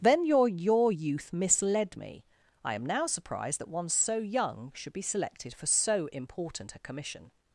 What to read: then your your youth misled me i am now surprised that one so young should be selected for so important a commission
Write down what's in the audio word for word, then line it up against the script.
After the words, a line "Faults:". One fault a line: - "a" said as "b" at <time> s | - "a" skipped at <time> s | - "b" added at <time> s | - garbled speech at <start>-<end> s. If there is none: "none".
then your your youth misled me i am now surprised that one so young should be selected for so important a commission
Faults:
none